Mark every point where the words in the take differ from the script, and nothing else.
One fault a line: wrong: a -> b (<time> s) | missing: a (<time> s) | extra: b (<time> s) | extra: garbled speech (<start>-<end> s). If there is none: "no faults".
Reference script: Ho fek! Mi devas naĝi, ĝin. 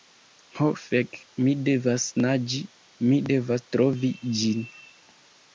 extra: mi devas trovi (3.1 s)